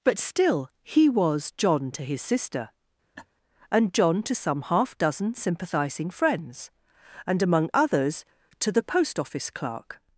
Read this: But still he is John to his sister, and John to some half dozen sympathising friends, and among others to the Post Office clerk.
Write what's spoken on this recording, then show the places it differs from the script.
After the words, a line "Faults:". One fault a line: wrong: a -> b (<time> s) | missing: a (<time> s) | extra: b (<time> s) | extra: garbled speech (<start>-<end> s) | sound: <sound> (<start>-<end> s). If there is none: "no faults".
But still he was John to his sister, and John to some half dozen sympathising friends, and among others to the Post Office clerk.
Faults:
wrong: is -> was (1.1 s)
sound: laugh (3.2-3.3 s)